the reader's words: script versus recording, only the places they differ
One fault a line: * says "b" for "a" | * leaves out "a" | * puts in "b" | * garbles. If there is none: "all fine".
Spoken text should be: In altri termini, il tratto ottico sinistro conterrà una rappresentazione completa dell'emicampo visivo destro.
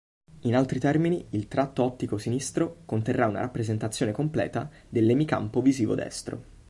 all fine